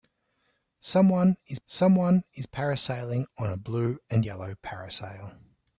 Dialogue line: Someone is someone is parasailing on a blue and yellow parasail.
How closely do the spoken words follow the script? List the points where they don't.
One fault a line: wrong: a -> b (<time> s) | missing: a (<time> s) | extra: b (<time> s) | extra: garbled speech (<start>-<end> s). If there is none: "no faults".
no faults